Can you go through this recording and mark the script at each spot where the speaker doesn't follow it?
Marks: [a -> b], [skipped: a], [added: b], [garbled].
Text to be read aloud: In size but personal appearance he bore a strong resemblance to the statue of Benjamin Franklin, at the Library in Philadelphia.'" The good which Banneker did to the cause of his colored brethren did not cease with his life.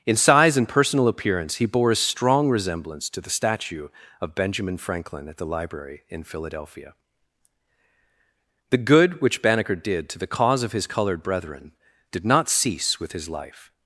In size [but -> and] personal appearance he bore a strong resemblance to the statue of Benjamin Franklin, at the Library in Philadelphia.'" The good which Banneker did to the cause of his colored brethren did not cease with his life.